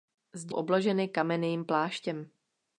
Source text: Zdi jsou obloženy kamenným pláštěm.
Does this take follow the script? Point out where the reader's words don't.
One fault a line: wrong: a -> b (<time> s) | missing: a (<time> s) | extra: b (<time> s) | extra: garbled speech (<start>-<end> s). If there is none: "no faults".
missing: jsou (0.6 s)